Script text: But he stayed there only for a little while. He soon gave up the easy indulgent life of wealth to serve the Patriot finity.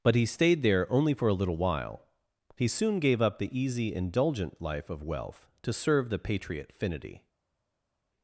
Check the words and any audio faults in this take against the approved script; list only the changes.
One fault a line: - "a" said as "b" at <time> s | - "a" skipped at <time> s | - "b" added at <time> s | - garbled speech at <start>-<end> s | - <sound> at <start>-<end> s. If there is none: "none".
none